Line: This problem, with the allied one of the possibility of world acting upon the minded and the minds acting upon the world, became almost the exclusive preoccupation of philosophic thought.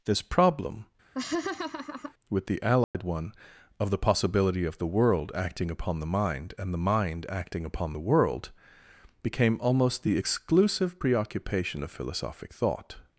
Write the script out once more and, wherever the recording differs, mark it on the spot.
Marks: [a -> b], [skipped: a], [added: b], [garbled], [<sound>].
This problem, [laugh] with the allied [dropout] one of the possibility of [added: the] world acting upon the [minded -> mind] and the [minds -> mind] acting upon the world, became almost the exclusive preoccupation of philosophic thought.